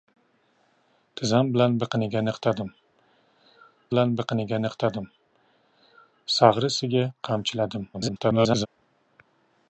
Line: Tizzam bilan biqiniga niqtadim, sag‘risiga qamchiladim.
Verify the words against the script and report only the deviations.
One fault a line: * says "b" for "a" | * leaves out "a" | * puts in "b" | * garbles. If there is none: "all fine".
* puts in "bilan biqiniga niqtadim"
* garbles